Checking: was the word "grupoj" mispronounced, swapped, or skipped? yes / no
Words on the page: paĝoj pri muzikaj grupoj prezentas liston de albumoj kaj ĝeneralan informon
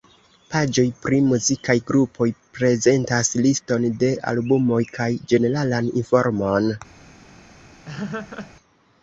no